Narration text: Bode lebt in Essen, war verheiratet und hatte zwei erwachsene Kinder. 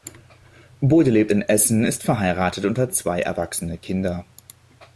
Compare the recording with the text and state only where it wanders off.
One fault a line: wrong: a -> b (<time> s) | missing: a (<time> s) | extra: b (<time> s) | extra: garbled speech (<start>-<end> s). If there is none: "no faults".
wrong: war -> ist (1.8 s)
wrong: hatte -> hat (2.8 s)